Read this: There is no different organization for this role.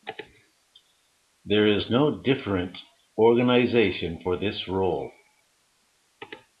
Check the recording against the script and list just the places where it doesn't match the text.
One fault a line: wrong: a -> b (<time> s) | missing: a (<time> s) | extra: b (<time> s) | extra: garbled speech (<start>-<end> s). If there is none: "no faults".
no faults